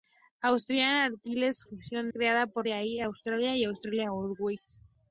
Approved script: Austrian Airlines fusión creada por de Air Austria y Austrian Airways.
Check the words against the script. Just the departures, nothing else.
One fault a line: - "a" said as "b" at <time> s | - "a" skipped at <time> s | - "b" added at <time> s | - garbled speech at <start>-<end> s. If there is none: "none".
none